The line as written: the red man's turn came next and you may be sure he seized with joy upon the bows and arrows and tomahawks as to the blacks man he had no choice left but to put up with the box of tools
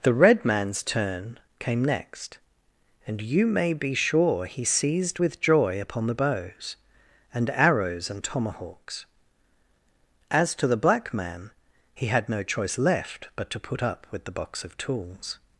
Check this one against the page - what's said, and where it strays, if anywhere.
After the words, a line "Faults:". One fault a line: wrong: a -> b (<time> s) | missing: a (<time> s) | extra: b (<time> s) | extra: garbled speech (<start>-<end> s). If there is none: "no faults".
the red man's turn came next and you may be sure he seized with joy upon the bows and arrows and tomahawks as to the black man he had no choice left but to put up with the box of tools
Faults:
wrong: blacks -> black (10.8 s)